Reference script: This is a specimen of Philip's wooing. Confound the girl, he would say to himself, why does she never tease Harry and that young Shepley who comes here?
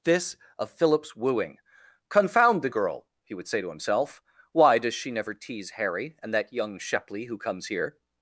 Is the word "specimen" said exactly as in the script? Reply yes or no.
no